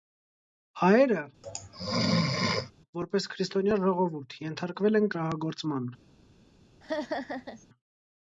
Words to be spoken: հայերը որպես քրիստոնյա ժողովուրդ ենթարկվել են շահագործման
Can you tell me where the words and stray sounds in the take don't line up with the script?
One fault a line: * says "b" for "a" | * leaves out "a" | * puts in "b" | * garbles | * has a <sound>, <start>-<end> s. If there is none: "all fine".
* has a sneeze, 1.4-2.7 s
* has a laugh, 6.8-7.7 s